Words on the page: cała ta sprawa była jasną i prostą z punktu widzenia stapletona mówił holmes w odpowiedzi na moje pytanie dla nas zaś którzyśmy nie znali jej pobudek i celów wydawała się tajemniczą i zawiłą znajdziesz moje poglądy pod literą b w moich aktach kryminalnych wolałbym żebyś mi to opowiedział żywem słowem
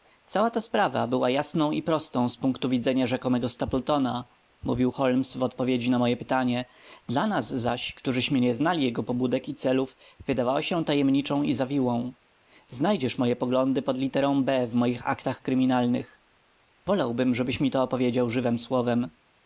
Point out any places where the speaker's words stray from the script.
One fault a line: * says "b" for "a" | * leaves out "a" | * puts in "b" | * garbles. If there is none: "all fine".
* puts in "rzekomego"
* says "jego" for "jej"